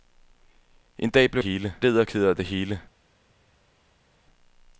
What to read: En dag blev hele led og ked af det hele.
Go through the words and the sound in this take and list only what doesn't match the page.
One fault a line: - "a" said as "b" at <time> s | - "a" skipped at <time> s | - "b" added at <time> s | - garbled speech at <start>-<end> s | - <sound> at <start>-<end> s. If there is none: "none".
none